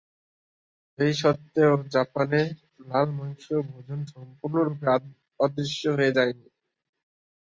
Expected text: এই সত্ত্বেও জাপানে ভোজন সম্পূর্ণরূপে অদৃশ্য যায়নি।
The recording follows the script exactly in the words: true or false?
false